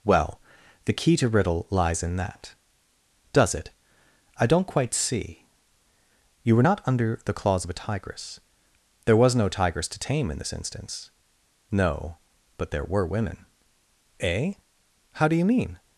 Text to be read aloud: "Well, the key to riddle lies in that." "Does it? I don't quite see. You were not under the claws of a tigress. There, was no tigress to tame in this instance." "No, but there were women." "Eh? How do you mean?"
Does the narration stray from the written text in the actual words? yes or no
no